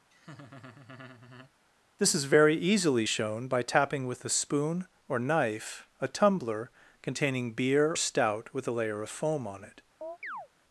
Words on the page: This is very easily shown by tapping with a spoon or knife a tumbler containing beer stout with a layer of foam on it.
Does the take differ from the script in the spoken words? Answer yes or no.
no